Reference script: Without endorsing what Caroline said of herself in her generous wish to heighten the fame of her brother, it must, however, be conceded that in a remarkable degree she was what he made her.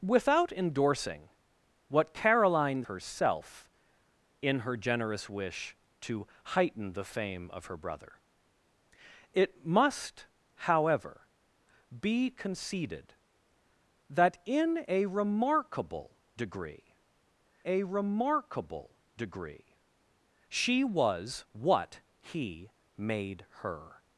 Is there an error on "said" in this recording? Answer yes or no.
yes